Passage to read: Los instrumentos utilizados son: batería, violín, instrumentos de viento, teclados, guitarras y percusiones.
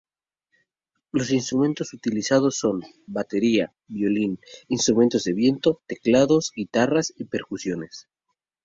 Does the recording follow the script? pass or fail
pass